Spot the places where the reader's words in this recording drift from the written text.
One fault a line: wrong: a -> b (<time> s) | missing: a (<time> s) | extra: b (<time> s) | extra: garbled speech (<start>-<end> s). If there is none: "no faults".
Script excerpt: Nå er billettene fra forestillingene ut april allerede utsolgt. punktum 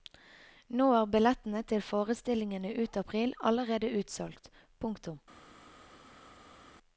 wrong: fra -> til (1.7 s)